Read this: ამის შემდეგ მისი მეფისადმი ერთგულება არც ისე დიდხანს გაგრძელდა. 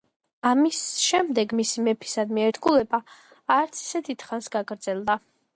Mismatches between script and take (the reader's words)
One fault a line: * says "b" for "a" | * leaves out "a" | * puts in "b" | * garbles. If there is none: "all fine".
all fine